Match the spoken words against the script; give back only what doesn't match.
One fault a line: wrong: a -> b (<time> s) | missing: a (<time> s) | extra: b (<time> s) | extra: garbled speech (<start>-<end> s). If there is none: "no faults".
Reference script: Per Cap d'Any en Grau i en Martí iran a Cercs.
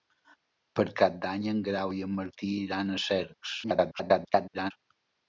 extra: garbled speech (3.6-4.7 s)